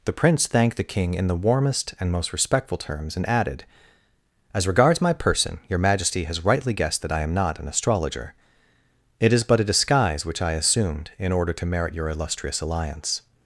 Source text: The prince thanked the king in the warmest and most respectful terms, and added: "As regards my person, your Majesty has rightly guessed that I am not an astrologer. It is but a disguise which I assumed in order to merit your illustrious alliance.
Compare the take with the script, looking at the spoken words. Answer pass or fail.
pass